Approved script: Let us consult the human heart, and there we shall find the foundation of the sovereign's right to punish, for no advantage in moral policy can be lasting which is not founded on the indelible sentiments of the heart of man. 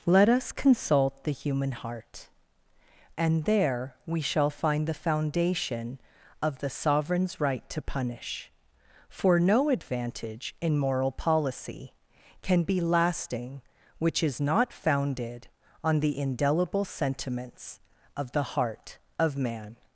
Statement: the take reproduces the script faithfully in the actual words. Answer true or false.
true